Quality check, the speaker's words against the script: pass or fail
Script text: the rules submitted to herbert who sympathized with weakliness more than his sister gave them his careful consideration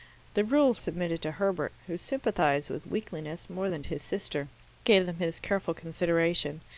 pass